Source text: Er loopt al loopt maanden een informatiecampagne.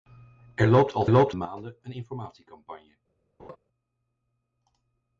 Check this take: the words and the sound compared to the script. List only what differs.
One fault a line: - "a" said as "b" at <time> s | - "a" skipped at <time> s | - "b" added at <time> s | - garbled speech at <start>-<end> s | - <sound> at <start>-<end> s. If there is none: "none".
- laugh at 3.4-3.6 s